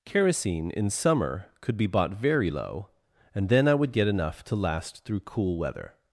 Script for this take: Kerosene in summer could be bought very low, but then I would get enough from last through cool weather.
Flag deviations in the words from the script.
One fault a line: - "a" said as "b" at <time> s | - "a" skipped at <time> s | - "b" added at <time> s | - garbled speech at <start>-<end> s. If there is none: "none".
- "but" said as "and" at 3.3 s
- "from" said as "to" at 4.4 s